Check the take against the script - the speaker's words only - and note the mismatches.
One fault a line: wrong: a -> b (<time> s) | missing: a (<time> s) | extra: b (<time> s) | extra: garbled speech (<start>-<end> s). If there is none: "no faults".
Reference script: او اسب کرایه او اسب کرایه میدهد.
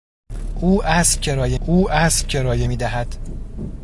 no faults